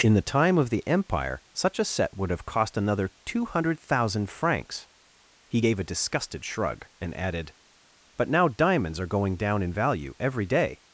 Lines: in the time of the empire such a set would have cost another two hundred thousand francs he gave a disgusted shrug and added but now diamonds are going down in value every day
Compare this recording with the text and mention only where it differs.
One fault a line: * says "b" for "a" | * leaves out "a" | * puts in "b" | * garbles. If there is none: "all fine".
all fine